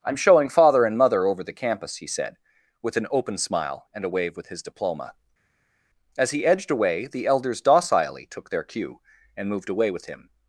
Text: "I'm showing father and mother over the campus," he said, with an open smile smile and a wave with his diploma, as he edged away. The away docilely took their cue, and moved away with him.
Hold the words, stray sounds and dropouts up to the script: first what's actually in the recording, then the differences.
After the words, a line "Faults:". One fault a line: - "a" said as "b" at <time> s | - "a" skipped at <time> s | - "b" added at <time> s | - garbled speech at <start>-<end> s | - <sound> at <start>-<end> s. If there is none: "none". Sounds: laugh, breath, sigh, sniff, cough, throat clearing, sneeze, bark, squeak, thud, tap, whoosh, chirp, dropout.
"I'm showing father and mother over the campus," he said, with an open smile and a wave with his diploma, as he edged away. The elders docilely took their cue, and moved away with him.
Faults:
- "smile" skipped at 3.9 s
- "away" said as "elders" at 7.3 s